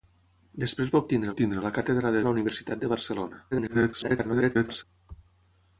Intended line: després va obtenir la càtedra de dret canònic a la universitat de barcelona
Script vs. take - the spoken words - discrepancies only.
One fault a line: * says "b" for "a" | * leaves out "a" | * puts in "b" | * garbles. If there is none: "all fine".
* puts in "obtenir"
* leaves out "dret canònic"
* garbles